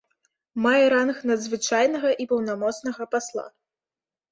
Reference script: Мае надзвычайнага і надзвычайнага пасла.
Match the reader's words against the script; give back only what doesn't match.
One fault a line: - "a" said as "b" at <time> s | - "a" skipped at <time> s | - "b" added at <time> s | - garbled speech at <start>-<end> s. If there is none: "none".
- "ранг" added at 0.9 s
- "надзвычайнага" said as "паўнамоцнага" at 2.3 s